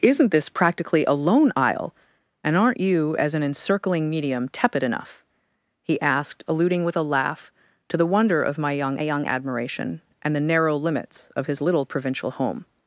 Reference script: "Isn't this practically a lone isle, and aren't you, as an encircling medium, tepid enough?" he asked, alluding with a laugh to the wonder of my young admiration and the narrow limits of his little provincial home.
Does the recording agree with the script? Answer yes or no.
no